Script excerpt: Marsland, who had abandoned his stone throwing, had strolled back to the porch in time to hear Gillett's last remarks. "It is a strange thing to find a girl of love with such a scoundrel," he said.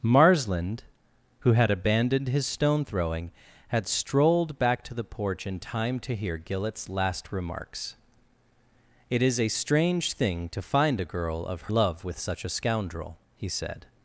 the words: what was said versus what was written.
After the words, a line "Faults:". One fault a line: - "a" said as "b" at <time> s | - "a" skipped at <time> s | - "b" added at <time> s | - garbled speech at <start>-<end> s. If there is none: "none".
Marsland, who had abandoned his stone throwing, had strolled back to the porch in time to hear Gillett's last remarks. "It is a strange thing to find a girl of love with such a scoundrel," he said.
Faults:
none